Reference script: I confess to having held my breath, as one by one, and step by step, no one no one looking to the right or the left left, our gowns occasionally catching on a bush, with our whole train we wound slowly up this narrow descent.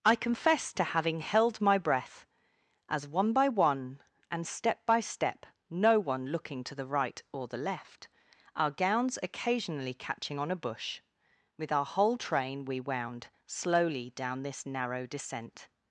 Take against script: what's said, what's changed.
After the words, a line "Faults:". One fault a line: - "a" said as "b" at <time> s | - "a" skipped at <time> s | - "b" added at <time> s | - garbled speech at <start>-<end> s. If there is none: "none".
I confess to having held my breath, as one by one, and step by step, no one looking to the right or the left, our gowns occasionally catching on a bush, with our whole train we wound slowly down this narrow descent.
Faults:
- "no one" skipped at 6.3 s
- "left" skipped at 8.1 s
- "up" said as "down" at 14.1 s